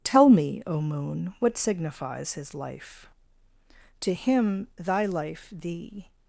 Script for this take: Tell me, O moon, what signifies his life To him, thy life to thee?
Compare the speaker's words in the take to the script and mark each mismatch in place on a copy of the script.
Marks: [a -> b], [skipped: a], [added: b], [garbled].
Tell me, O moon, what signifies his life To him, thy life [skipped: to] thee?